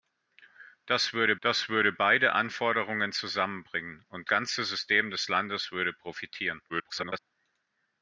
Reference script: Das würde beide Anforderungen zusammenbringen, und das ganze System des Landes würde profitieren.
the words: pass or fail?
fail